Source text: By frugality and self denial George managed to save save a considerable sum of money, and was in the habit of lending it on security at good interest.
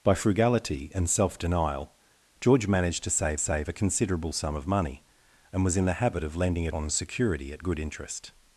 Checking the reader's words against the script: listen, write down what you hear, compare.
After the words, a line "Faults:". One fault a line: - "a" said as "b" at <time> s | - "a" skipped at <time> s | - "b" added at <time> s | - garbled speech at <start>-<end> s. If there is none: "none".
By frugality and self denial George managed to save save a considerable sum of money, and was in the habit of lending it on security at good interest.
Faults:
none